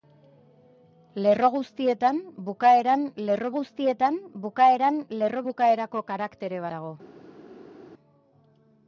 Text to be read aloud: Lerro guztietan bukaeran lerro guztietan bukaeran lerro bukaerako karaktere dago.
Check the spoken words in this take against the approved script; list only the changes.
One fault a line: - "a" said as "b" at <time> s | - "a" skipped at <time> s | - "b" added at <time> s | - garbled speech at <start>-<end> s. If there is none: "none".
none